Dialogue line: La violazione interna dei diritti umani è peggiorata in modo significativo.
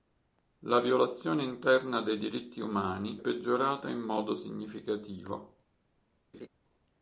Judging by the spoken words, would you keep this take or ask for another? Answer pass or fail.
fail